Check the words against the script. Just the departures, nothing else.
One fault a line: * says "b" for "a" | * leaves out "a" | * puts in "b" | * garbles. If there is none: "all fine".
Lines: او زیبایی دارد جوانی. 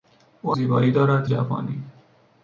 all fine